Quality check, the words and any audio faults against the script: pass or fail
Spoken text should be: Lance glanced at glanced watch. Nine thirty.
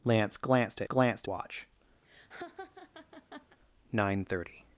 fail